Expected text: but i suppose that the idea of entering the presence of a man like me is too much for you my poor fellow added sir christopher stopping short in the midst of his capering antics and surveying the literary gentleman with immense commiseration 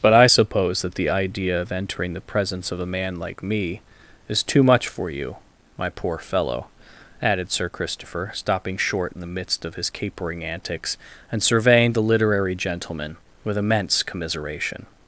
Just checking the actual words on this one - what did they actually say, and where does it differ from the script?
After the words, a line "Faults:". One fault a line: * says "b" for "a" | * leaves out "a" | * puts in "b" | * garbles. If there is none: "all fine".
but i suppose that the idea of entering the presence of a man like me is too much for you my poor fellow added sir christopher stopping short in the midst of his capering antics and surveying the literary gentleman with immense commiseration
Faults:
all fine